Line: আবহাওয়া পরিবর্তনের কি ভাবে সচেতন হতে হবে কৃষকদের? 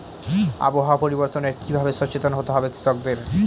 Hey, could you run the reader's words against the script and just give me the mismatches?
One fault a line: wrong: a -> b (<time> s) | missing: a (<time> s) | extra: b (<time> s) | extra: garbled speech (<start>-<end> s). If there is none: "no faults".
no faults